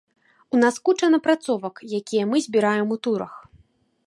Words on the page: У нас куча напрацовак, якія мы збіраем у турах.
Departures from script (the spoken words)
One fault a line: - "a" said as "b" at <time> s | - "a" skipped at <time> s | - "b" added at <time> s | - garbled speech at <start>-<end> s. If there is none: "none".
none